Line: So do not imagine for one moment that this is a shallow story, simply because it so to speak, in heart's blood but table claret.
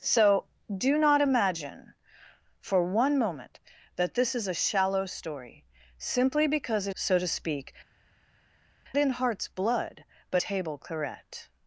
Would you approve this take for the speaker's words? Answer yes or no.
yes